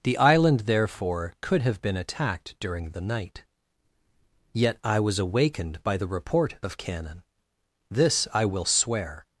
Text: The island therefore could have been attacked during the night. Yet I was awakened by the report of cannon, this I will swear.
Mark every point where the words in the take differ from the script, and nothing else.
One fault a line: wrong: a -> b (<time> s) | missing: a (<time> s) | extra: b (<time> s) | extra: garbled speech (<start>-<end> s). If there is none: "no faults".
no faults